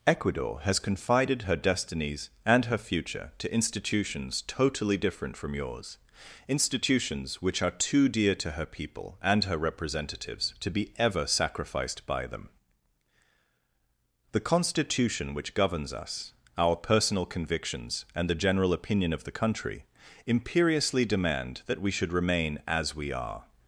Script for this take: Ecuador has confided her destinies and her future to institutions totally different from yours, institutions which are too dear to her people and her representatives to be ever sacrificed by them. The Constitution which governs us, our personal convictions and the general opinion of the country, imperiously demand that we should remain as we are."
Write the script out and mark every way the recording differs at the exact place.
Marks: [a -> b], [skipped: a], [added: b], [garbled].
Ecuador has confided her destinies and her future to institutions totally different from yours, institutions which are too dear to her people and her representatives to be ever sacrificed by them. The Constitution which governs us, our personal convictions and the general opinion of the country, imperiously demand that we should remain as we are."